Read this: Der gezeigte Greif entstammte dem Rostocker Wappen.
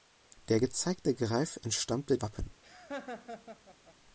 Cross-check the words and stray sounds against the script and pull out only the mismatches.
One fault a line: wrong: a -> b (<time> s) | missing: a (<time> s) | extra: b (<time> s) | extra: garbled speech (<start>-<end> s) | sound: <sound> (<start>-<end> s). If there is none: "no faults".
missing: dem Rostocker (2.2 s)
sound: laugh (2.6-4.0 s)